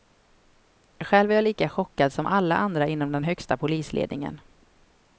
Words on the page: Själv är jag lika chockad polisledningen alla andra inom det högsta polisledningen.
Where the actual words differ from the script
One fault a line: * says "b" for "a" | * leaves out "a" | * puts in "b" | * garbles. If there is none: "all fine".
* says "som" for "polisledningen"
* says "den" for "det"